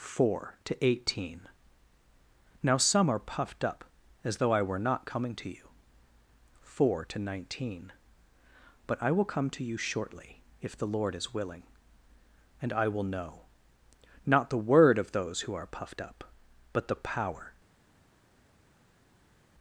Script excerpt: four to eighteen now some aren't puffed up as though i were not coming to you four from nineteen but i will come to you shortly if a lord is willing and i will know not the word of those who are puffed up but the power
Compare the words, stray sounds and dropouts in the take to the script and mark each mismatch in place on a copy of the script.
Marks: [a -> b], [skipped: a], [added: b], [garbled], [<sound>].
four to eighteen now some [aren't -> are] puffed up as though i were not coming to you four [from -> to] nineteen but i will come to you shortly if [a -> the] lord is willing and i will know not the word of those who are puffed up but the power